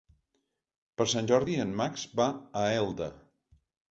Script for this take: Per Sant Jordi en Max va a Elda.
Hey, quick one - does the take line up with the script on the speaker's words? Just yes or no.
yes